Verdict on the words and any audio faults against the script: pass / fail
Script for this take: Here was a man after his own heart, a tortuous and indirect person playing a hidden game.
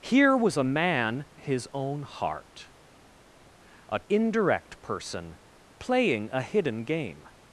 fail